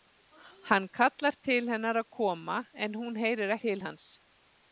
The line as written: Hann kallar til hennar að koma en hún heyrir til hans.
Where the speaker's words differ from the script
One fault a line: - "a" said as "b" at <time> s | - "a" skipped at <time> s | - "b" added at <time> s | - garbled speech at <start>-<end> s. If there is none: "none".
none